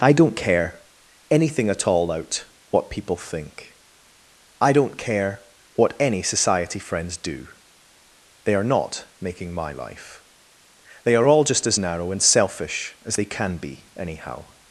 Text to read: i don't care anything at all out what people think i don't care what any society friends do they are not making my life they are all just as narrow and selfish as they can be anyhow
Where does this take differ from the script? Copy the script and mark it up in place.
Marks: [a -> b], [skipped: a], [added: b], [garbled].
i don't care anything at all out what people think i don't care what any society friends do they are not making my life they are all just as narrow and selfish as they can be anyhow